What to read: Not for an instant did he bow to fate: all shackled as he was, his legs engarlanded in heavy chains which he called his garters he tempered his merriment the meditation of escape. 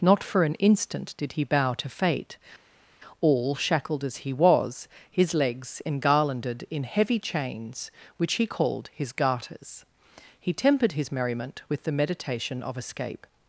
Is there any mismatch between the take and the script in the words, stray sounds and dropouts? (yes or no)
yes